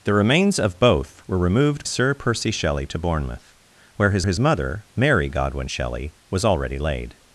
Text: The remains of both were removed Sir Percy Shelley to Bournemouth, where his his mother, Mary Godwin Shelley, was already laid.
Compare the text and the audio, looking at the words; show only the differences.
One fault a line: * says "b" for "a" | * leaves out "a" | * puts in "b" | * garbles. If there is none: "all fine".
all fine